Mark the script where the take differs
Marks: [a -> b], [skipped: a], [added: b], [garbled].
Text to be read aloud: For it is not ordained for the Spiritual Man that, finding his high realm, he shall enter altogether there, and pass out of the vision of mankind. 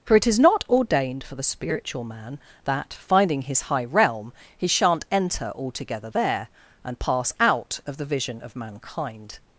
For it is not ordained for the Spiritual Man that, finding his high realm, he [shall -> shan't] enter altogether there, and pass out of the vision of mankind.